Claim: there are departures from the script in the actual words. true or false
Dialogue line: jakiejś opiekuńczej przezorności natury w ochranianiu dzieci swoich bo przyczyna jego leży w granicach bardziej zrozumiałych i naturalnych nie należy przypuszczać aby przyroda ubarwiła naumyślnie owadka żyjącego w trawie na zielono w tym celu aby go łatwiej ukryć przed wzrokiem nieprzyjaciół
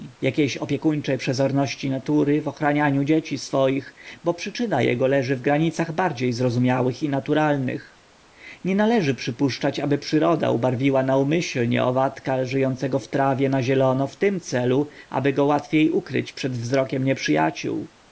false